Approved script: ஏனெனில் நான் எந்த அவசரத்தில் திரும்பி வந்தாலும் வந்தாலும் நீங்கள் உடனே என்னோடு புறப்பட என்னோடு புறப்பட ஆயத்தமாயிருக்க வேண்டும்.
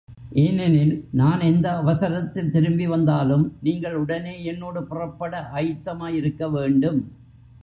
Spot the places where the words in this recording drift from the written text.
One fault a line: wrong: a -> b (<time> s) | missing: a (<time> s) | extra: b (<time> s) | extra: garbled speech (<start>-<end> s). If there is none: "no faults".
missing: வந்தாலும் (3.5 s)
missing: என்னோடு புறப்பட (5.5 s)